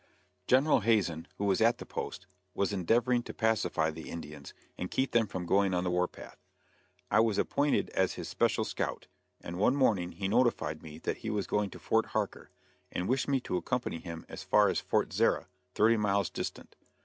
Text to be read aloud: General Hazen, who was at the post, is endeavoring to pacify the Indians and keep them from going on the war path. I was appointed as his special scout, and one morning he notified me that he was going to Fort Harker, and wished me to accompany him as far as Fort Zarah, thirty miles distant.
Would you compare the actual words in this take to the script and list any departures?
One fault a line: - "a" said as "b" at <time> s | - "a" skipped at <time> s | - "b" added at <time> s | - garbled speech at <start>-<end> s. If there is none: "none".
- "is" said as "was" at 2.5 s